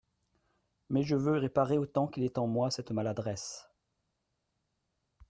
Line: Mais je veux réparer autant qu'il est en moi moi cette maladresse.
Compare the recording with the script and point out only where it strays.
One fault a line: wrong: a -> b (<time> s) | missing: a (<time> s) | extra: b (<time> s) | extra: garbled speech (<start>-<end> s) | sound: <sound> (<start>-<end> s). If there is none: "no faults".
missing: moi (2.7 s)